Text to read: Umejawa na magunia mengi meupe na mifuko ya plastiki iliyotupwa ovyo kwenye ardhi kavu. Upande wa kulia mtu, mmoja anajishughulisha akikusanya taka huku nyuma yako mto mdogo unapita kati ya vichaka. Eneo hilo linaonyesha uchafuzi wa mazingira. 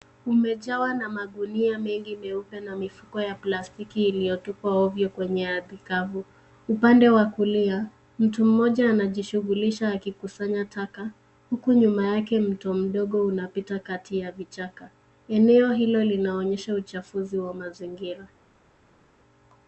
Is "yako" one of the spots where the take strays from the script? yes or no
yes